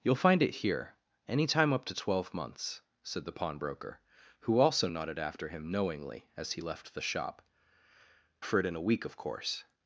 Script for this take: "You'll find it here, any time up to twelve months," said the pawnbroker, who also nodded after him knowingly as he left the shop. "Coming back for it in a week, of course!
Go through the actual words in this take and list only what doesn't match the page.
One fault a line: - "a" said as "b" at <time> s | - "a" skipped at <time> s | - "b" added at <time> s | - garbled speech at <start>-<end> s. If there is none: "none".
- "Coming back" skipped at 7.4 s